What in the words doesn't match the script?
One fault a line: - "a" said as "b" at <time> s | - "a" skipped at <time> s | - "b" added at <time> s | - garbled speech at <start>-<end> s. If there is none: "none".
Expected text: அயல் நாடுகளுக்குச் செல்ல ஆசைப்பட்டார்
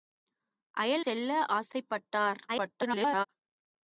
- "நாடுகளுக்குச்" skipped at 1.1 s
- garbled speech at 2.5-3.3 s